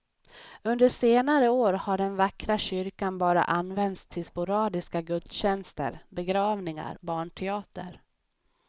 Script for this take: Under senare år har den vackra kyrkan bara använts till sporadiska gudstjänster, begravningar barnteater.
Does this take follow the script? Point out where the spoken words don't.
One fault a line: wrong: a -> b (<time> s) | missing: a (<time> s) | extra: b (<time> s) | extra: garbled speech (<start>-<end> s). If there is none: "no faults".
no faults